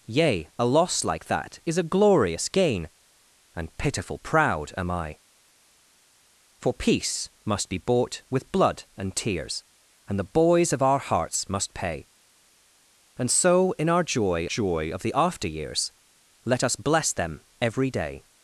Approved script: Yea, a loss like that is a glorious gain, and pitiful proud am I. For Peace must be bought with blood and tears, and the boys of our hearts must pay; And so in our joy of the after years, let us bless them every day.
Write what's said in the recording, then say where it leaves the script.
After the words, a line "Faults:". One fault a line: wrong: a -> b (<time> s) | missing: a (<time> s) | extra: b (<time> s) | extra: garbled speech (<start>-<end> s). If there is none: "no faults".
Yea, a loss like that is a glorious gain, and pitiful proud am I. For Peace must be bought with blood and tears, and the boys of our hearts must pay; And so in our joy joy of the after years, let us bless them every day.
Faults:
extra: joy (14.4 s)